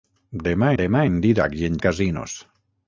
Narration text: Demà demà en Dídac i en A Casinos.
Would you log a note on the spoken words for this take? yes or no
no